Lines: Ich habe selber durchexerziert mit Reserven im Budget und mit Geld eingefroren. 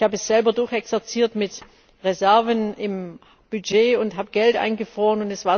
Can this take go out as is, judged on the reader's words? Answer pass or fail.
fail